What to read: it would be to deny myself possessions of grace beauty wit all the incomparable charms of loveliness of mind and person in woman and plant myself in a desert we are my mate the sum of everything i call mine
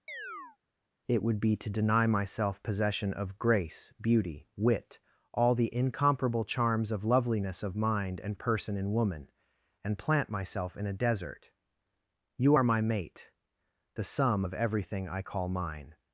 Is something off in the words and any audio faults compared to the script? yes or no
yes